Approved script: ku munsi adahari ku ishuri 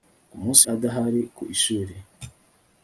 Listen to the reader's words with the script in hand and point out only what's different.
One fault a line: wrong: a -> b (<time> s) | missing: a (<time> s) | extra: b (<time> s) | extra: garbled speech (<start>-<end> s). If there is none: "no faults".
no faults